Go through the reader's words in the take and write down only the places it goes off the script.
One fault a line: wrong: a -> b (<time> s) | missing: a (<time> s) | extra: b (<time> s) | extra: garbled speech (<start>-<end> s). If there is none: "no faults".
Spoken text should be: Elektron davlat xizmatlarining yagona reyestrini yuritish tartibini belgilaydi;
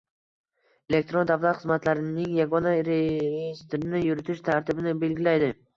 no faults